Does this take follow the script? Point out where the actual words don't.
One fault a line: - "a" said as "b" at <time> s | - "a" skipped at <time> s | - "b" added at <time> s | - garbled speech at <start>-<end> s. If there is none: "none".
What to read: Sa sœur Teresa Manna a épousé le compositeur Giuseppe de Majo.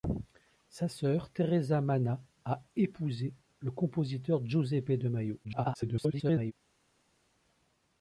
- garbled speech at 5.4-6.5 s